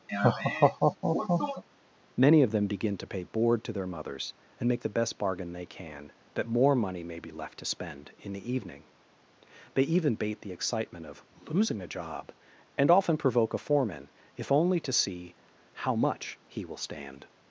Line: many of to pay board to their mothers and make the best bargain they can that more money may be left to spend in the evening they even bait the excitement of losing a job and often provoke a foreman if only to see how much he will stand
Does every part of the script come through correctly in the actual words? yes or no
no